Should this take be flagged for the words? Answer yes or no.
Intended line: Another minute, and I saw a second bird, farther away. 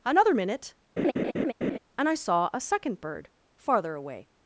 no